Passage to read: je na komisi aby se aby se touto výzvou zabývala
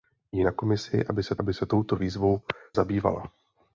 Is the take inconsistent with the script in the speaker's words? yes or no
no